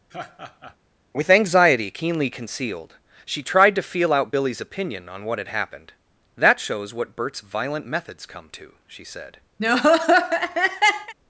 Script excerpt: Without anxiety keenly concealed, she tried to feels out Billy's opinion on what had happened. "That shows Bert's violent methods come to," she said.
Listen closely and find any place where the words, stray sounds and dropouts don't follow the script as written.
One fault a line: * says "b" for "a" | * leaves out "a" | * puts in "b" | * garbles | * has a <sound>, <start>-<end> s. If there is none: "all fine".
* has a laugh, 0.1-0.8 s
* says "With" for "Without"
* says "feel" for "feels"
* puts in "what"
* has a laugh, 9.6-11.1 s